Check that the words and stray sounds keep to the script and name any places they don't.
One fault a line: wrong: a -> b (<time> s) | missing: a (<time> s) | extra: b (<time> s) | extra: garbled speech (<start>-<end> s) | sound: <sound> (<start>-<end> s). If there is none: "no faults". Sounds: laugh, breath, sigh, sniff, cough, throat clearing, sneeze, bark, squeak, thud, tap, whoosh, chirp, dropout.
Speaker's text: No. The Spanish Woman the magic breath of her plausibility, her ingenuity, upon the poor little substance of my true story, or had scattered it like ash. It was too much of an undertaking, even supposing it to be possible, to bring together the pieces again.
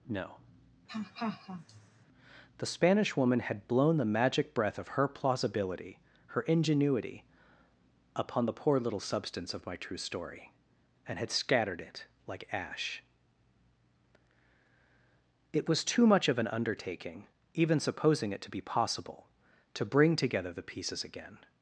sound: laugh (0.9-2.1 s)
extra: had blown (3.4 s)
wrong: or -> and (11.1 s)